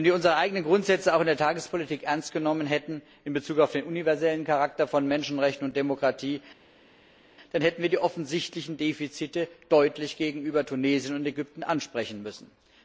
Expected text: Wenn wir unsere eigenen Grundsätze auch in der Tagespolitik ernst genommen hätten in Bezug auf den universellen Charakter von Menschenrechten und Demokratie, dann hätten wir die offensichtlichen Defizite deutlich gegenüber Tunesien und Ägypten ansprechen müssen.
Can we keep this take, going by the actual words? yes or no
yes